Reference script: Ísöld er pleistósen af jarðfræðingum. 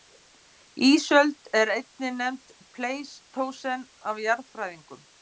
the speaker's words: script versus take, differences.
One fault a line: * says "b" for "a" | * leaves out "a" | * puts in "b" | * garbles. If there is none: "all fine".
* puts in "einnig nefnd"